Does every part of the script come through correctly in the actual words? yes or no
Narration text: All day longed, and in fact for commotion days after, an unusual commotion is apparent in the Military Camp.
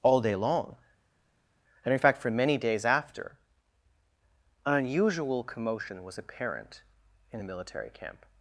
no